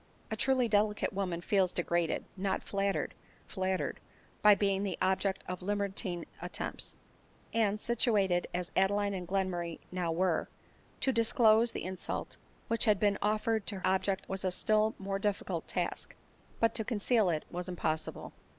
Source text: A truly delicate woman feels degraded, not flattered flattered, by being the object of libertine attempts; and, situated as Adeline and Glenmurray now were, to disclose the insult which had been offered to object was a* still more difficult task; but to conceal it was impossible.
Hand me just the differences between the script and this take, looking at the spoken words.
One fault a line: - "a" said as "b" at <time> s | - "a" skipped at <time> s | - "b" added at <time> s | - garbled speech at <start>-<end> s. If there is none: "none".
none